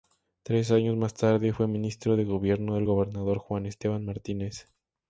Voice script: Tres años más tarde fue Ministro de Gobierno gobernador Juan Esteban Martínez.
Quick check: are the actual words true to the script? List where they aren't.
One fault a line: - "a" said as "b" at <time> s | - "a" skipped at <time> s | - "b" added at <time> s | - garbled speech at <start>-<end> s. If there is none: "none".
- "del" added at 2.8 s